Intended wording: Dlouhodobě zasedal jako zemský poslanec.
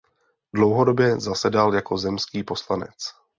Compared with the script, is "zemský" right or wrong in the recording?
right